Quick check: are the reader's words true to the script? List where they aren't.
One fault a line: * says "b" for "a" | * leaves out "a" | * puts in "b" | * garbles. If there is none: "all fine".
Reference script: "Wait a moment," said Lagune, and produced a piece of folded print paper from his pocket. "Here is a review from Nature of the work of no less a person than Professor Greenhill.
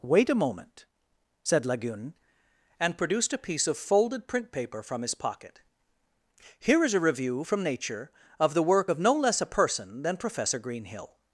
all fine